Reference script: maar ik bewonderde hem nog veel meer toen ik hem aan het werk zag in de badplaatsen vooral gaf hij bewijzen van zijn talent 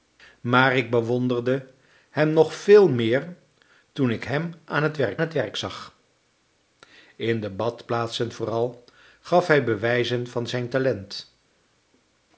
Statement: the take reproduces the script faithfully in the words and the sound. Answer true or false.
false